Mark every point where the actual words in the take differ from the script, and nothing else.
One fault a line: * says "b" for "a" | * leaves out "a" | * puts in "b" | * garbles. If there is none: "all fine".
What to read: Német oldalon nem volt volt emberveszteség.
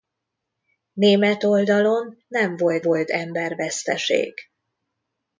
all fine